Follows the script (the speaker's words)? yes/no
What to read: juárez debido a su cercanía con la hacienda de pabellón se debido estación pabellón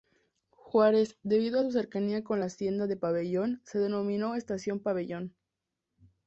no